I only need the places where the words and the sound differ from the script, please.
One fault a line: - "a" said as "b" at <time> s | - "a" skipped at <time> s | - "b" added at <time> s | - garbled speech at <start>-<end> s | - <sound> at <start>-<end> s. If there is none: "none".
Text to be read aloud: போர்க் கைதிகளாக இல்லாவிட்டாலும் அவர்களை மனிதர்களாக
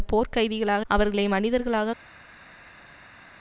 - "இல்லாவிட்டாலும்" skipped at 0.8 s